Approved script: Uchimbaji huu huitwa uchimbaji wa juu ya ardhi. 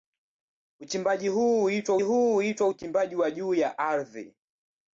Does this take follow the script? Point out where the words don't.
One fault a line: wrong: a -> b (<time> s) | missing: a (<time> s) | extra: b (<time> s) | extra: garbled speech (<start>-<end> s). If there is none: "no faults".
extra: huu huitwa (2.0 s)